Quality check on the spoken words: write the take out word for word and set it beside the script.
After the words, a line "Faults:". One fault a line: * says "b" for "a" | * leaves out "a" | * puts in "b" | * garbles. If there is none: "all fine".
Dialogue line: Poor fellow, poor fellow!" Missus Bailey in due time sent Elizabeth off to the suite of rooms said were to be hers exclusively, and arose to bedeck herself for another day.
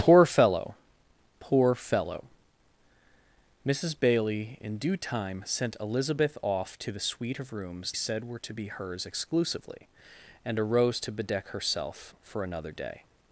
Poor fellow, poor fellow!" Missus Bailey in due time sent Elizabeth off to the suite of rooms said were to be hers exclusively, and arose to bedeck herself for another day.
Faults:
all fine